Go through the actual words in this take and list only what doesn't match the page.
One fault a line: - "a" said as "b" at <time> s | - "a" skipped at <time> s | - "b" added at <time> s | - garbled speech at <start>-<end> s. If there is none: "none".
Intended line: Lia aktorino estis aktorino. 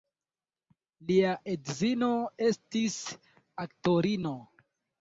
- "aktorino" said as "edzino" at 1.5 s